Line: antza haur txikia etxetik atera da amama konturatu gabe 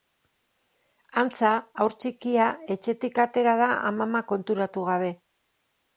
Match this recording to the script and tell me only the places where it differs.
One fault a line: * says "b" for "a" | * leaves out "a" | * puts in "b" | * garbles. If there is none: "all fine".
all fine